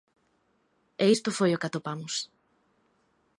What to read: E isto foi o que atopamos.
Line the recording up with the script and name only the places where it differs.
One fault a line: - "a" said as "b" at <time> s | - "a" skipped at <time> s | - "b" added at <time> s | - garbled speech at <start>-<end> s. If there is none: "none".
none